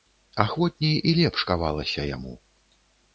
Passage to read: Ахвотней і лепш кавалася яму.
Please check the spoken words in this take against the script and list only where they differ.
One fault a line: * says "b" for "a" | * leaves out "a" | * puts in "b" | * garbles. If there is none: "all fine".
all fine